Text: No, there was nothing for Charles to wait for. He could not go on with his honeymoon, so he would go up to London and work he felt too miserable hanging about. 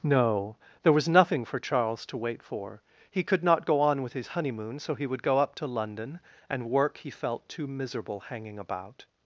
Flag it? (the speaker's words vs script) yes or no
no